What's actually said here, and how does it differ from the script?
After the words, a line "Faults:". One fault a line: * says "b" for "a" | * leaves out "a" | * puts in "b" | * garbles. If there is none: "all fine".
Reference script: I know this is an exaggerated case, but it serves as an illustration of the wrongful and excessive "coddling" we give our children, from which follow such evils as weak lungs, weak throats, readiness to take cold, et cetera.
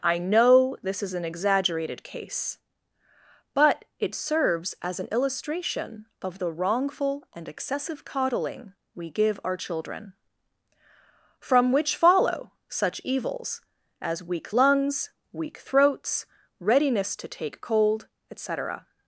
I know this is an exaggerated case, but it serves as an illustration of the wrongful and excessive "coddling" we give our children, from which follow such evils as weak lungs, weak throats, readiness to take cold, et cetera.
Faults:
all fine